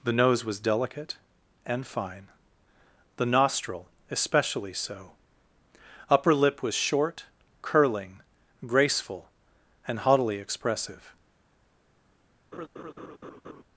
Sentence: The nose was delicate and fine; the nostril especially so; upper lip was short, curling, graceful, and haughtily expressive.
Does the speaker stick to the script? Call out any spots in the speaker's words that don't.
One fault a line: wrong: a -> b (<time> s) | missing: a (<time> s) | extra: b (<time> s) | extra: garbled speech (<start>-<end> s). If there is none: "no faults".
no faults